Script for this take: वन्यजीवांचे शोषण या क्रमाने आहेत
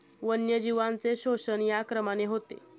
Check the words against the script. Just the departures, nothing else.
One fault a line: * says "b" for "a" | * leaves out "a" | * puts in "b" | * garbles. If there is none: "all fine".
* says "होते" for "आहेत"